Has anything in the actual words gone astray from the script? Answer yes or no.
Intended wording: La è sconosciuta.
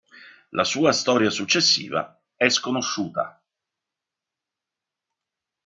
yes